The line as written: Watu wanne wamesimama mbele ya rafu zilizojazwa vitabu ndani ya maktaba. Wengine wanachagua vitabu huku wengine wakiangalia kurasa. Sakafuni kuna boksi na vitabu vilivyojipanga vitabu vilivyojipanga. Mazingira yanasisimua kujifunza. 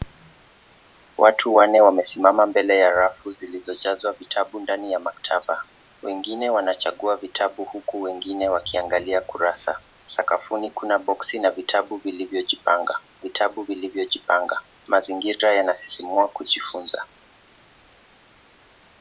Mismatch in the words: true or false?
false